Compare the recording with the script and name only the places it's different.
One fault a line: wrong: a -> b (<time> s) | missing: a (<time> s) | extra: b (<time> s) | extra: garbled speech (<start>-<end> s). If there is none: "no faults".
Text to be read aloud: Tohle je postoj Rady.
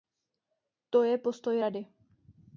wrong: Tohle -> To (0.9 s)